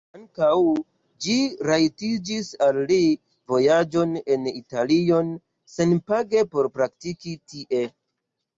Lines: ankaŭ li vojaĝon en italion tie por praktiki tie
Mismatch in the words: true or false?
true